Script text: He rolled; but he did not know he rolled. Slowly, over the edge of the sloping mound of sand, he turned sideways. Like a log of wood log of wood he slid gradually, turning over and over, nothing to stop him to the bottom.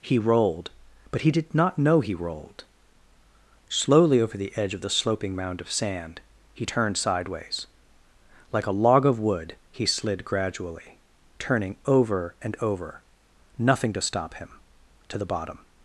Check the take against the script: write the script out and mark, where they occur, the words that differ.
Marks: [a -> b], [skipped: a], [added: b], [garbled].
He rolled; but he did not know he rolled. Slowly, over the edge of the sloping mound of sand, he turned sideways. Like a log of wood [skipped: log of wood] he slid gradually, turning over and over, nothing to stop him to the bottom.